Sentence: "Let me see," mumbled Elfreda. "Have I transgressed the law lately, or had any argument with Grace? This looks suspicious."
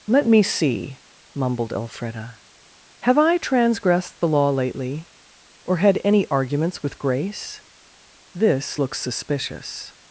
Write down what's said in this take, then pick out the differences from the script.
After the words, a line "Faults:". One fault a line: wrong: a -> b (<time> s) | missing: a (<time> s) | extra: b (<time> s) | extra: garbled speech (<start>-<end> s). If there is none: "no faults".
"Let me see," mumbled Elfreda. "Have I transgressed the law lately, or had any arguments with Grace? This looks suspicious."
Faults:
wrong: argument -> arguments (6.3 s)